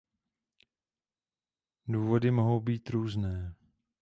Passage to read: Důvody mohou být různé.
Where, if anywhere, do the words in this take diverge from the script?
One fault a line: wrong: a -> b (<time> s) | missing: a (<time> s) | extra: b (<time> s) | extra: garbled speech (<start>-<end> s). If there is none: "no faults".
no faults